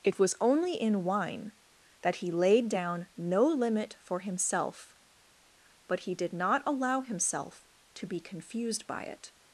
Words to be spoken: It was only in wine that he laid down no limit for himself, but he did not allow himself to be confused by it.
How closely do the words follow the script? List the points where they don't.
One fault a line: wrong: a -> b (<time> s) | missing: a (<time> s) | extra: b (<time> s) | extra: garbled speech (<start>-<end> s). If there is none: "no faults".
no faults